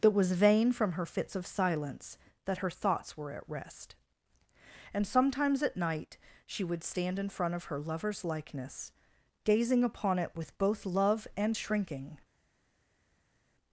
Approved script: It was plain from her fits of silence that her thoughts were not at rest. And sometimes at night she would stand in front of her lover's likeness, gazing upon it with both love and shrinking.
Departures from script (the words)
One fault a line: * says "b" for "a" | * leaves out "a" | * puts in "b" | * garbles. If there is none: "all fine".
* says "vain" for "plain"
* leaves out "not"